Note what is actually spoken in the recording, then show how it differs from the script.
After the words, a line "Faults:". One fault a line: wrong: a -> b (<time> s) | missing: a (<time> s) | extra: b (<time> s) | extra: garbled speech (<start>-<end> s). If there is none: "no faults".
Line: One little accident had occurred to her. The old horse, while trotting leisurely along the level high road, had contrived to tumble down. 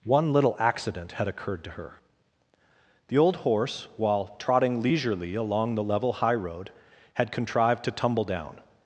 One little accident had occurred to her. The old horse, while trotting leisurely along the level high road, had contrived to tumble down.
Faults:
no faults